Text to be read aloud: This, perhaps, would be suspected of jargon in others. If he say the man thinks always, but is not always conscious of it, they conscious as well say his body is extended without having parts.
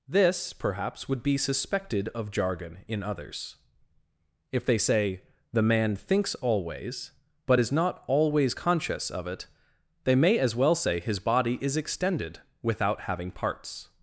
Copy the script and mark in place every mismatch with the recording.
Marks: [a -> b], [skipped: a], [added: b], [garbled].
This, perhaps, would be suspected of jargon in others. If [he -> they] say the man thinks always, but is not always conscious of it, they [conscious -> may] as well say his body is extended without having parts.